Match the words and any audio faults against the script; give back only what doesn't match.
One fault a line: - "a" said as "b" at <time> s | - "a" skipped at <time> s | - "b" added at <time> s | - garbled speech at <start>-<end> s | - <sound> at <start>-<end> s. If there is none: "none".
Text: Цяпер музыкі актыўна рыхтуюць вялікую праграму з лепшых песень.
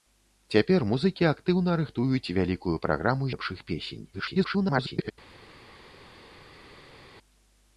- "з" skipped at 3.2 s
- garbled speech at 4.1-5.1 s